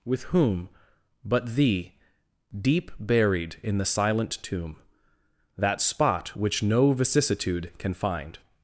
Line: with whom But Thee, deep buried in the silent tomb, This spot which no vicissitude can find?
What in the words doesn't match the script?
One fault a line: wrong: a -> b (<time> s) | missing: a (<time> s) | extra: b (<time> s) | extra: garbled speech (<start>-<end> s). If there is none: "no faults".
wrong: This -> That (5.6 s)